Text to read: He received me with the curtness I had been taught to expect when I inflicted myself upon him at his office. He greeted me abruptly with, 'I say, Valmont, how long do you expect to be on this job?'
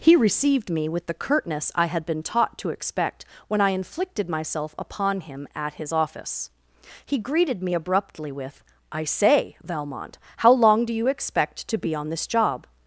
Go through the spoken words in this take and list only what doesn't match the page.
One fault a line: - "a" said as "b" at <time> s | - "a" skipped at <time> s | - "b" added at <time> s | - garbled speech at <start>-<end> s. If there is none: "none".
none